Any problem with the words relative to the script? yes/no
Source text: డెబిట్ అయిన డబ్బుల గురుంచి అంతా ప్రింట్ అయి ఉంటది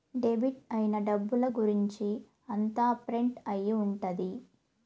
no